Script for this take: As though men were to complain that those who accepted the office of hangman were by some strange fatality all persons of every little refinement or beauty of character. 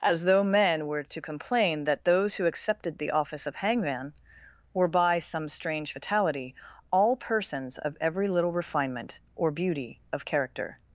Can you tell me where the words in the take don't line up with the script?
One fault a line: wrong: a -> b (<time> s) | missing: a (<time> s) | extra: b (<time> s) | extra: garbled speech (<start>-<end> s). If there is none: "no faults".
no faults